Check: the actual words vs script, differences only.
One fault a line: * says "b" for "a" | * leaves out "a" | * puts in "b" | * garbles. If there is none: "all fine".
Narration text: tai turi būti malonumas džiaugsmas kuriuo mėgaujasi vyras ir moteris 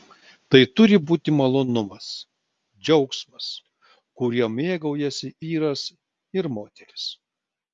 all fine